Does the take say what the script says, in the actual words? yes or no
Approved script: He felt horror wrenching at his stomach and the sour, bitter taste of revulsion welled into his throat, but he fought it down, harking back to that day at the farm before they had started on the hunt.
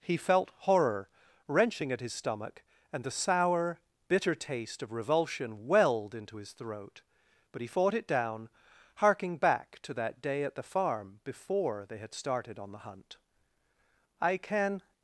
no